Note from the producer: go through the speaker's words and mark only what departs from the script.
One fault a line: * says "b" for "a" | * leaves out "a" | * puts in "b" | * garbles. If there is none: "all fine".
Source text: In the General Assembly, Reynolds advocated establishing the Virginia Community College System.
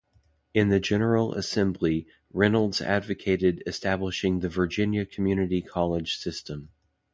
all fine